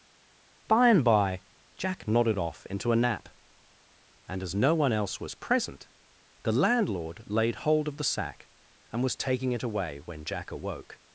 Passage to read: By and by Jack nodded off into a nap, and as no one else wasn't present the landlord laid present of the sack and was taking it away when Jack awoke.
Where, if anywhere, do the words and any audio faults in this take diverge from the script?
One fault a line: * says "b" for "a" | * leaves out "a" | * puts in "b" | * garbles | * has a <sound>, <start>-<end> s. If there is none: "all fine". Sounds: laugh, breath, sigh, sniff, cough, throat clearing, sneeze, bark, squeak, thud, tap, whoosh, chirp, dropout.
* says "was" for "wasn't"
* says "hold" for "present"